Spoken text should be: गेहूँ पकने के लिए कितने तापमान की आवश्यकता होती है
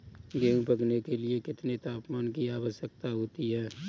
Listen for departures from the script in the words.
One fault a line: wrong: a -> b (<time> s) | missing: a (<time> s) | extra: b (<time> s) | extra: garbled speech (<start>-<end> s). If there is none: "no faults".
no faults